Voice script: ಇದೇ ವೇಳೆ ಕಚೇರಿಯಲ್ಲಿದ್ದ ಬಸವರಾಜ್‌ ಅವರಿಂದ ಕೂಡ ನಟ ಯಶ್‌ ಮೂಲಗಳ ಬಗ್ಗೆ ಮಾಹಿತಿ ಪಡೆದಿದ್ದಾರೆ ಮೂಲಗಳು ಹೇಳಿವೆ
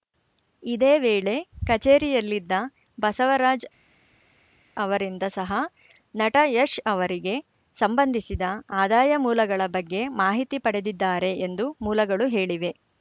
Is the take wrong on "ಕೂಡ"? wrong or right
wrong